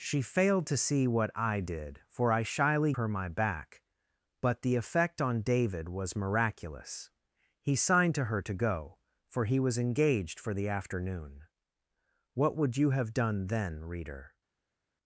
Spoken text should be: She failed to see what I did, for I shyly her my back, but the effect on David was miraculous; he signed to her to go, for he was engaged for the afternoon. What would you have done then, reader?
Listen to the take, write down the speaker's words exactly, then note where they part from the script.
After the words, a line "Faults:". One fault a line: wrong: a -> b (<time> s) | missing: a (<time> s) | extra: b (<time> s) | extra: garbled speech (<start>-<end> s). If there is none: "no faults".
She failed to see what I did, for I shyly her my back, but the effect on David was miraculous; he signed to her to go, for he was engaged for the afternoon. What would you have done then, reader?
Faults:
no faults